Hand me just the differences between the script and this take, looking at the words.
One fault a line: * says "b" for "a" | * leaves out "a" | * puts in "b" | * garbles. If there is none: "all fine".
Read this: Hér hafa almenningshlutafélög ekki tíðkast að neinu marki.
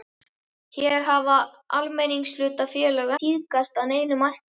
* leaves out "ekki"